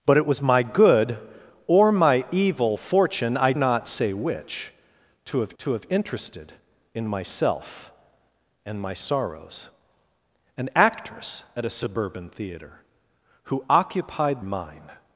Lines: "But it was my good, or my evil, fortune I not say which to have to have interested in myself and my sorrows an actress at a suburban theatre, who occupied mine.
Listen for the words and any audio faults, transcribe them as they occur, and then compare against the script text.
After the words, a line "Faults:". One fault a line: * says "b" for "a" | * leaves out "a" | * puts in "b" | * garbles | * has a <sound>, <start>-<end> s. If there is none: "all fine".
"But it was my good, or my evil, fortune I not say which to have to have interested in myself and my sorrows an actress at a suburban theatre, who occupied mine.
Faults:
all fine